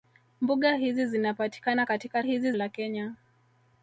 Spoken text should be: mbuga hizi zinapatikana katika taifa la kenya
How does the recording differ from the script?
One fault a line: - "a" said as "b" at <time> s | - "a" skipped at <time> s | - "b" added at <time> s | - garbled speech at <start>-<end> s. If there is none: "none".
- "taifa" said as "hizi" at 2.2 s